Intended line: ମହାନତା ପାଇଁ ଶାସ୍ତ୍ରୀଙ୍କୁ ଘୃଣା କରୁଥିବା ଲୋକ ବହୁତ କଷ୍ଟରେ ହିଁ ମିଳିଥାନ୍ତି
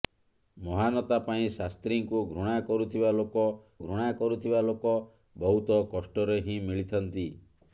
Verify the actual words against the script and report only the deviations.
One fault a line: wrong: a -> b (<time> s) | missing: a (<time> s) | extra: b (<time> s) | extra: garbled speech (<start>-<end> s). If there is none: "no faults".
extra: ଘୃଣା କରୁଥିବା ଲୋକ (3.8 s)